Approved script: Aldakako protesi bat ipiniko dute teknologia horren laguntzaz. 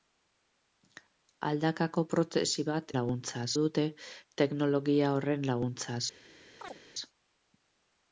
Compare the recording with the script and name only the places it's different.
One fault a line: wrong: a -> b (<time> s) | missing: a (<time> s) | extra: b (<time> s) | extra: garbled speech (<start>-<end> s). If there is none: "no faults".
wrong: ipiniko -> laguntzaz (3.0 s)